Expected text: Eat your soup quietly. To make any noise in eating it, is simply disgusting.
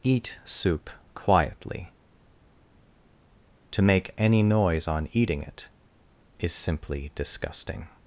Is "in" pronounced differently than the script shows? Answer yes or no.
yes